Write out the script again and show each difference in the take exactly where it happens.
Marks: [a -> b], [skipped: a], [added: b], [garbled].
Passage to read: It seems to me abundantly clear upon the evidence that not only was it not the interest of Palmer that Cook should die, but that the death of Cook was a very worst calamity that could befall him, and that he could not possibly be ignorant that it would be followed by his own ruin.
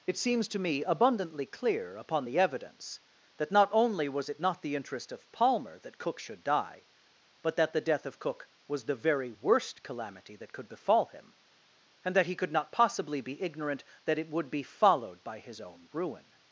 It seems to me abundantly clear upon the evidence that not only was it not the interest of Palmer that Cook should die, but that the death of Cook was [a -> the] very worst calamity that could befall him, and that he could not possibly be ignorant that it would be followed by his own ruin.